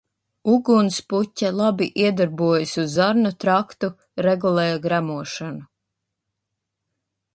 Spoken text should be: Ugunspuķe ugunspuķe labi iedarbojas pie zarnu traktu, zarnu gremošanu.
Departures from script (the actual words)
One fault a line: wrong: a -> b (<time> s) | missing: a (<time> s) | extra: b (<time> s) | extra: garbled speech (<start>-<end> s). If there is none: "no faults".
missing: ugunspuķe (1.5 s)
wrong: pie -> uz (2.8 s)
wrong: zarnu -> regulē (4.3 s)